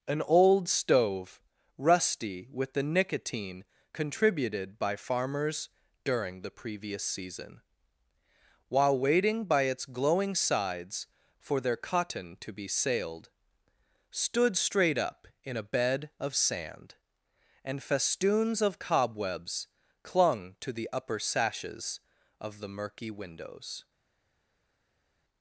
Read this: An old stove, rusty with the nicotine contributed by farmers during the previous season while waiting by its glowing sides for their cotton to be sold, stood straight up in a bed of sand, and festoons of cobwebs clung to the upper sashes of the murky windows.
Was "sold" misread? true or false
true